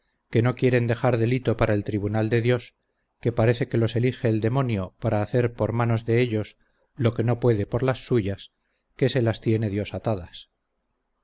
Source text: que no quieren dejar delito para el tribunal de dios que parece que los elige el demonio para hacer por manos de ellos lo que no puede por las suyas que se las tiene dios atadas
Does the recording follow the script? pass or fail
pass